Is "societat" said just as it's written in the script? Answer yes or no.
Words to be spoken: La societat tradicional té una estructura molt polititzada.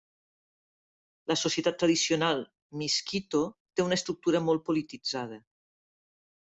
yes